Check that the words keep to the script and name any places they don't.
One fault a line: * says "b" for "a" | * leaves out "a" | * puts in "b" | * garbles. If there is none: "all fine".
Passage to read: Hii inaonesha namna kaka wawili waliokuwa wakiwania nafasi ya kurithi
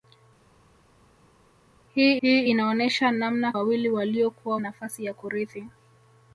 * puts in "hii"
* leaves out "kaka"
* leaves out "wakiwania"